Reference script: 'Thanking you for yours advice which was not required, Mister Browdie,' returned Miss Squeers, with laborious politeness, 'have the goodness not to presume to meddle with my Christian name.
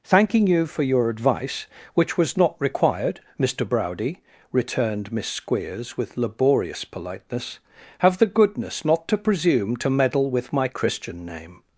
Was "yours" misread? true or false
true